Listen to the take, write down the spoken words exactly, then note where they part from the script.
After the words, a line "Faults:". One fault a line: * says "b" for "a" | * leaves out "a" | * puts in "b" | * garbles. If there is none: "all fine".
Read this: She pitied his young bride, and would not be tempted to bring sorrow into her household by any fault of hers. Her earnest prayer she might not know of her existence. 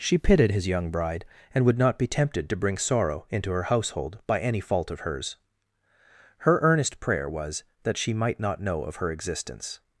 She pitied his young bride, and would not be tempted to bring sorrow into her household by any fault of hers. Her earnest prayer was, that she might not know of her existence.
Faults:
* puts in "was that"